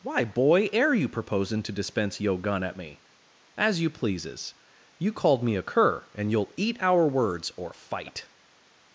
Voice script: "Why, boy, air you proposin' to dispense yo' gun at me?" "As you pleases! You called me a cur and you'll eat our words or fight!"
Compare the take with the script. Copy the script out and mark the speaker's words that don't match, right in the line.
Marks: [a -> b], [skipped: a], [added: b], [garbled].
"Why, boy, air you proposin' to dispense yo' gun at me?" "As you pleases! You called me a cur and you'll eat our words or fight!"